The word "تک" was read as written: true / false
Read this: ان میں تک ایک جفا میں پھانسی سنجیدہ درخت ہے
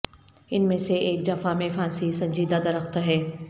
false